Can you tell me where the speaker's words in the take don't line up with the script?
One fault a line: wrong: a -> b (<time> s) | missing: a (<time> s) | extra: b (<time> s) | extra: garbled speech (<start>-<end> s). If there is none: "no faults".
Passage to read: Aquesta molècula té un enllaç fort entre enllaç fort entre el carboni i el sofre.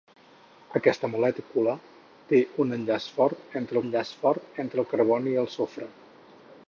no faults